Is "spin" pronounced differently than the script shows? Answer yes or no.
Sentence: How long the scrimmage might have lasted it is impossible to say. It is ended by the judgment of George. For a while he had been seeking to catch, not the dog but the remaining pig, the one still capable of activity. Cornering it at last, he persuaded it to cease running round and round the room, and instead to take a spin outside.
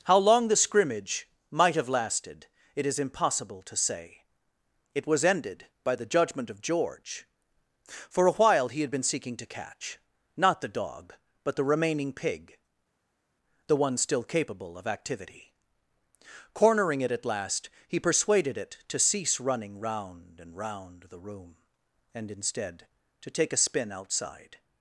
no